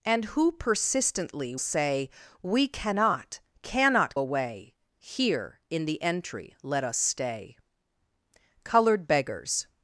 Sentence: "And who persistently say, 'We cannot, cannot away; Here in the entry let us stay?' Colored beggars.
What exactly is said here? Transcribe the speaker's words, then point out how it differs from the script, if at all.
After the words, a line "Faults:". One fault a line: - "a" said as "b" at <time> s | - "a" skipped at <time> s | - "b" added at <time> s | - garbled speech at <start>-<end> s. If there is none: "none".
"And who persistently say, 'We cannot, cannot away; Here in the entry let us stay?' Colored beggars.
Faults:
none